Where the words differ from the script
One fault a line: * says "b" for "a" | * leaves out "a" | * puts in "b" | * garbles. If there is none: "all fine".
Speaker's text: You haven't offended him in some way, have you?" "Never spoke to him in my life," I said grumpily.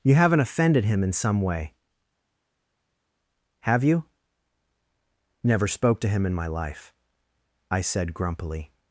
all fine